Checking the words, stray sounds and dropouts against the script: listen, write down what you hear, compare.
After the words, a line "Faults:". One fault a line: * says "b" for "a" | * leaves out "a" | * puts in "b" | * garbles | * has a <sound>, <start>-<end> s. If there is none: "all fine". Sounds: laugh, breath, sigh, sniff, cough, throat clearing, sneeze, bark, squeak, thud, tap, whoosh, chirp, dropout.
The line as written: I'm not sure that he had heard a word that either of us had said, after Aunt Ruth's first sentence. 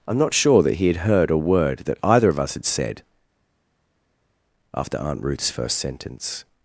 I'm not sure that he had heard a word that either of us had said, after Aunt Ruth's first sentence.
Faults:
all fine